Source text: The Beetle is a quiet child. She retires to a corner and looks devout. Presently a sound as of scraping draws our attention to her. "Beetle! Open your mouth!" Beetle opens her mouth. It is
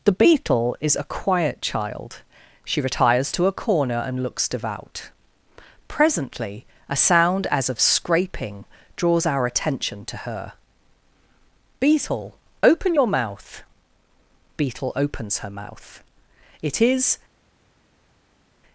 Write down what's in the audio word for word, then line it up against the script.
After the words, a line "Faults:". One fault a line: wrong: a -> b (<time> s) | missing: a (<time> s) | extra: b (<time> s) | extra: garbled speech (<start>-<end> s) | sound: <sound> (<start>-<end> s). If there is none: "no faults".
The Beetle is a quiet child. She retires to a corner and looks devout. Presently a sound as of scraping draws our attention to her. "Beetle! Open your mouth!" Beetle opens her mouth. It is
Faults:
no faults